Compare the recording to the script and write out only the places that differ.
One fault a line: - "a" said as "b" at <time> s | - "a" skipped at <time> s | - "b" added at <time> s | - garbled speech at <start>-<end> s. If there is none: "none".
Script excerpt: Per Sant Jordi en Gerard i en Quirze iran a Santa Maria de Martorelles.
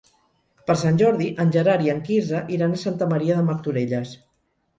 none